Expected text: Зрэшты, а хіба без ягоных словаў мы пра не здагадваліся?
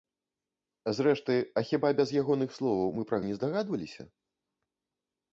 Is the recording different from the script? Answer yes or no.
no